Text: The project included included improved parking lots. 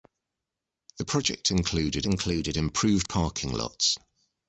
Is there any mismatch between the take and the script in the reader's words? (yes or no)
no